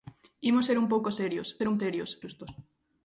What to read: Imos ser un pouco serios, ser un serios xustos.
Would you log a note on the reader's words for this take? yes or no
no